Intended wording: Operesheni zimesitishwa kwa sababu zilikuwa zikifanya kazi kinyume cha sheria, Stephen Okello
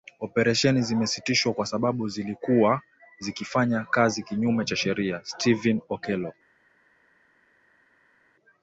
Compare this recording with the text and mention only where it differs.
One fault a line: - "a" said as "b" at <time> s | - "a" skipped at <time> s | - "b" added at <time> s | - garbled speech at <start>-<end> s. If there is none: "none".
none